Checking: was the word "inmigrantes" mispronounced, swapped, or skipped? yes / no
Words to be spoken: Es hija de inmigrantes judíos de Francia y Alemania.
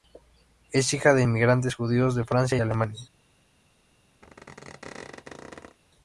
no